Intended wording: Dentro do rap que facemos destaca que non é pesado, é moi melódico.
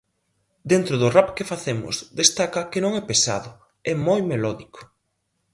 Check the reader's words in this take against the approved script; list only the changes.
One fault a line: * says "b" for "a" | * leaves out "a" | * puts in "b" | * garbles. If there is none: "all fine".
all fine